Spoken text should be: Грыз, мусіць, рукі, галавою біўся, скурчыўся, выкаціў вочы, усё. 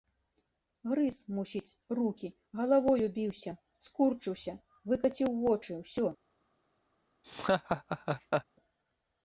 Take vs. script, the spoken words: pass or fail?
pass